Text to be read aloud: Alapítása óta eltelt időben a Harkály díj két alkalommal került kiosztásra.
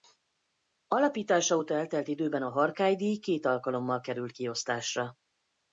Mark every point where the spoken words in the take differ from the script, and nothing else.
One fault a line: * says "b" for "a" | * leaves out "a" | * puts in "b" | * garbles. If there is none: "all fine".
all fine